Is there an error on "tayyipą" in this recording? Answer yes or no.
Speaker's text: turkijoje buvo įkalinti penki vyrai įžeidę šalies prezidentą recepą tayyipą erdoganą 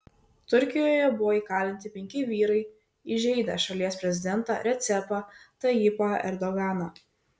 no